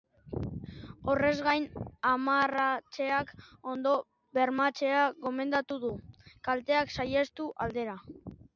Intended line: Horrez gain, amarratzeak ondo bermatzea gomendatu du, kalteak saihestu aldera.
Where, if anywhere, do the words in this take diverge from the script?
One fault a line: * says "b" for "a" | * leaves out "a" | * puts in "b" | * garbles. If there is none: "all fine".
all fine